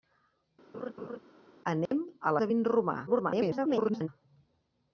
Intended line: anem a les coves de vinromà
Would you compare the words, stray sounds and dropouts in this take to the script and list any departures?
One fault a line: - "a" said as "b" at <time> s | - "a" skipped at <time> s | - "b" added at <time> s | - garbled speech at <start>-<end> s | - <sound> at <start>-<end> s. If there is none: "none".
- laugh at 0.7-1.2 s
- dropout at 1.9-1.9 s
- "les coves" skipped at 2.3 s
- garbled speech at 3.1-4.1 s